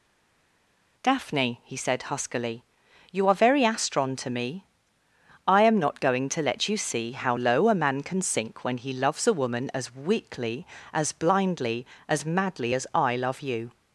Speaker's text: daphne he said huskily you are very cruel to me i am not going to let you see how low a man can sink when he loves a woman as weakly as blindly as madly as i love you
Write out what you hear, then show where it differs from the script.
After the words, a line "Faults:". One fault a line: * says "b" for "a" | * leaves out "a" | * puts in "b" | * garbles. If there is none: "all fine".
daphne he said huskily you are very astron to me i am not going to let you see how low a man can sink when he loves a woman as weakly as blindly as madly as i love you
Faults:
* says "astron" for "cruel"